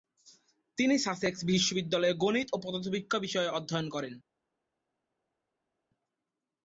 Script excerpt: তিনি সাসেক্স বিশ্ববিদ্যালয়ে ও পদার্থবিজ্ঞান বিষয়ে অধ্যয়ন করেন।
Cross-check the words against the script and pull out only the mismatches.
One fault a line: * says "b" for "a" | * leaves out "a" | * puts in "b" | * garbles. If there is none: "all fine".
* puts in "গণিত"